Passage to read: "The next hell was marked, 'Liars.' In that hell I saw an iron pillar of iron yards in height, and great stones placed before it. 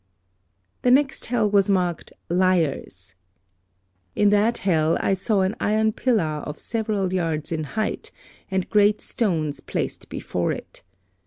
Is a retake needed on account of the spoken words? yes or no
yes